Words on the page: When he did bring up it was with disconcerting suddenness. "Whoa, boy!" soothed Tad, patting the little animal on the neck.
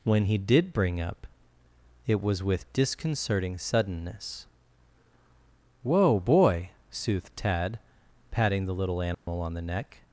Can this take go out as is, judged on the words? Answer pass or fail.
pass